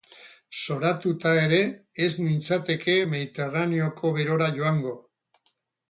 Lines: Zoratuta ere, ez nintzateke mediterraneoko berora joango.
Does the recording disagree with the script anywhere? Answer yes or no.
no